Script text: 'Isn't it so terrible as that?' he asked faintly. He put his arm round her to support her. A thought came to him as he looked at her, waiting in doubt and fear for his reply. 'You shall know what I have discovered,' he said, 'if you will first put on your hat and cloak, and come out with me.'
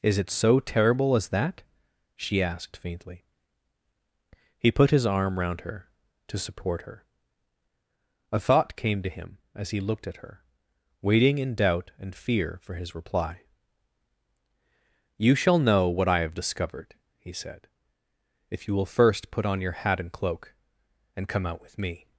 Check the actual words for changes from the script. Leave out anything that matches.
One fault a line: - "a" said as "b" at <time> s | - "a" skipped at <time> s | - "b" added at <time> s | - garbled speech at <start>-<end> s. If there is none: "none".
- "Isn't" said as "Is" at 0.0 s
- "he" said as "she" at 2.1 s